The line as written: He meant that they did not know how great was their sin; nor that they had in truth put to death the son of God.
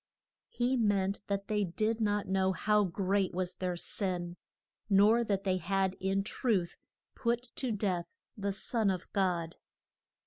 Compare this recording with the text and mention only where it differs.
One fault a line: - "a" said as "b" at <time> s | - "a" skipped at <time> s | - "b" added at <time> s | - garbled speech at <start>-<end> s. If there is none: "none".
none